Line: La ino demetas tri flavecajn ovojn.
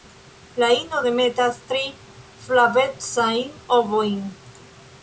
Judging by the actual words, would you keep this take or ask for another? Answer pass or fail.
pass